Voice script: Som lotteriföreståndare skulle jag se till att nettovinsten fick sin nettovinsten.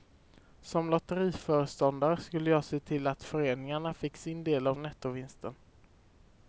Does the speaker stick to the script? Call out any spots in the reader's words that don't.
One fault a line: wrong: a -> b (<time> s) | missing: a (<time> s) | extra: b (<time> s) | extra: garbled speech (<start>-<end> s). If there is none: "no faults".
wrong: nettovinsten -> föreningarna (3.2 s)
extra: del av (4.4 s)